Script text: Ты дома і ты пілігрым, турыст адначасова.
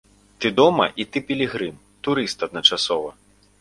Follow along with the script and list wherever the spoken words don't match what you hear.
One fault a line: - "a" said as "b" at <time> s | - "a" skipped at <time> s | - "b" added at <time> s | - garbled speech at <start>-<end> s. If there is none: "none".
none